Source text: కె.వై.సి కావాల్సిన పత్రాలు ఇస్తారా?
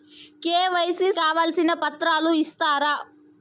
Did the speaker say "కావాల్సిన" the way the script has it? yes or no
yes